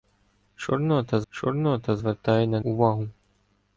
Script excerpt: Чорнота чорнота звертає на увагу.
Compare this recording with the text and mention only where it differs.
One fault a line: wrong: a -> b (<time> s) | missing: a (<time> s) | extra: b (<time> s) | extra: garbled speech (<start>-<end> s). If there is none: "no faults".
no faults